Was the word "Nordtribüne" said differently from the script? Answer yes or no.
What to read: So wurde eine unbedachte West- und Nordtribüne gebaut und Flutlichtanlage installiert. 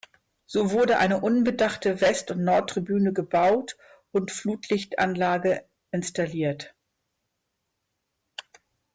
no